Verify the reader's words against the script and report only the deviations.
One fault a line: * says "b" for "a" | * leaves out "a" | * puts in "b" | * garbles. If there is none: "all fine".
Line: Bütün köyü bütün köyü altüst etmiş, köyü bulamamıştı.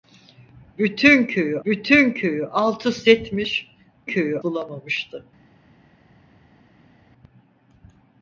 all fine